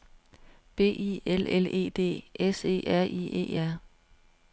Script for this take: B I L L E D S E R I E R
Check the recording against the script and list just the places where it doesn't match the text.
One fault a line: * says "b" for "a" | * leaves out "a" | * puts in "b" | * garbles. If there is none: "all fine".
all fine